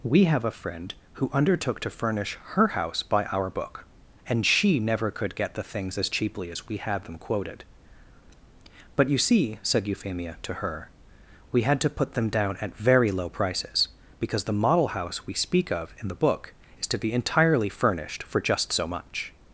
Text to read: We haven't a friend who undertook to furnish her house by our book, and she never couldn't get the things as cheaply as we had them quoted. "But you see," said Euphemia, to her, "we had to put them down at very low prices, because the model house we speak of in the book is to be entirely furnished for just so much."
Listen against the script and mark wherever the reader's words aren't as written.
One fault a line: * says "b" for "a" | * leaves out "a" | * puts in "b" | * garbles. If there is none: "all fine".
* says "have" for "haven't"
* says "could" for "couldn't"